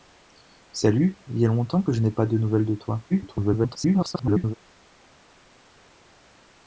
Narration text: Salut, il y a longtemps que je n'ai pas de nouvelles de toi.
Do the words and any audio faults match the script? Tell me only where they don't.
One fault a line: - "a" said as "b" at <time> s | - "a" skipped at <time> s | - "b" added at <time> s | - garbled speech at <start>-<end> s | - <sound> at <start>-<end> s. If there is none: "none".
- garbled speech at 3.1-4.5 s